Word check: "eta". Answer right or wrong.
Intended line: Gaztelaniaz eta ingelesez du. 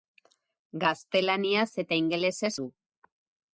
right